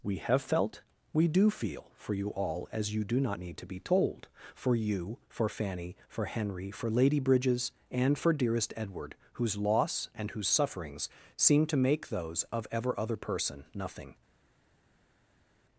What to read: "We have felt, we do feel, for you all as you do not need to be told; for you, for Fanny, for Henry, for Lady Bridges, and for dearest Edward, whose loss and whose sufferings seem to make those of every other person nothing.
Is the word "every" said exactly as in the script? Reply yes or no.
no